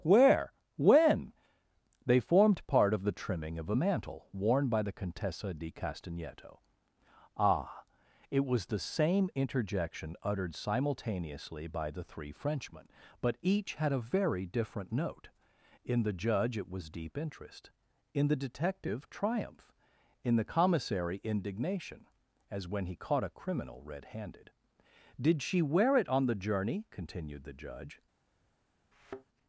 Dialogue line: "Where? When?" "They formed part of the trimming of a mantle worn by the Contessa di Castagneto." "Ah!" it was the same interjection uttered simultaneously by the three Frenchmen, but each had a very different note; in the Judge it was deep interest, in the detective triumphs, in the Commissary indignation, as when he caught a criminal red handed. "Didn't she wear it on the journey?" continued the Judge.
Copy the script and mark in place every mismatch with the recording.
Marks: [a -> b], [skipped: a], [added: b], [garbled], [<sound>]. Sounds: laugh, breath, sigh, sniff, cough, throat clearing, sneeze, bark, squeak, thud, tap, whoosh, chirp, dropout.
"Where? When?" "They formed part of the trimming of a mantle worn by the Contessa di Castagneto." "Ah!" it was the same interjection uttered simultaneously by the three Frenchmen, but each had a very different note; in the Judge it was deep interest, in the detective [triumphs, -> triumph] in the Commissary indignation, as when he caught a criminal red handed. ["Didn't -> Did] she wear it on the journey?" continued the Judge. [thud]